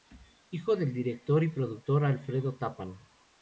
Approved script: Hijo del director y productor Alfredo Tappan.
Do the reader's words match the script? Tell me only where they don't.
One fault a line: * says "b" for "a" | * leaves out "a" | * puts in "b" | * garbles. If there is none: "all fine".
all fine